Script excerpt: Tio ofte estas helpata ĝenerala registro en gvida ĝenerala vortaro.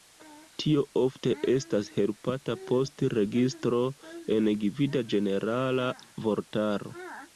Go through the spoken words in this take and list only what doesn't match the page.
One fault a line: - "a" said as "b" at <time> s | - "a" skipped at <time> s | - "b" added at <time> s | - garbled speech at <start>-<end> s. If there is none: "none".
- "ĝenerala" said as "post" at 2.7 s